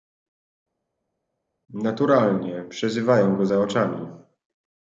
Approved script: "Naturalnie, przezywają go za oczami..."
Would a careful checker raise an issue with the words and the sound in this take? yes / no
no